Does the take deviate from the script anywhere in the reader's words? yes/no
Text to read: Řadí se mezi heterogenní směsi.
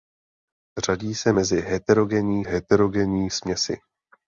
yes